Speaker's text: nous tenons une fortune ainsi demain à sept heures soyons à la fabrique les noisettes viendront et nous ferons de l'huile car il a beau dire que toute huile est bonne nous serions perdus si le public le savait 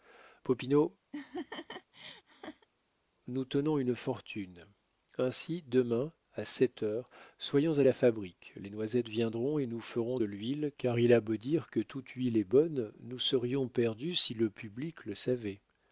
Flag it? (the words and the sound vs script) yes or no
yes